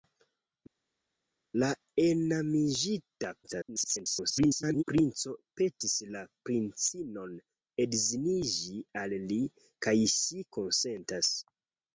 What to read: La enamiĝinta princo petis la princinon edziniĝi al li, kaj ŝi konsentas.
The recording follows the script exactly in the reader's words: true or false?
false